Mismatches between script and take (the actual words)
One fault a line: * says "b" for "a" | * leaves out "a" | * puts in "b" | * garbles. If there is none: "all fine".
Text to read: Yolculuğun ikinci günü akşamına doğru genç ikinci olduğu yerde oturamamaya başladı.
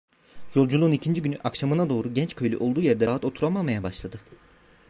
* says "köylü" for "ikinci"
* puts in "rahat"